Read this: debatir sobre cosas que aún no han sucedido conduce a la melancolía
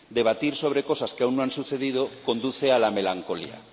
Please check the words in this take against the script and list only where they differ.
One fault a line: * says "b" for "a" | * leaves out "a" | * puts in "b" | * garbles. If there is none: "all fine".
all fine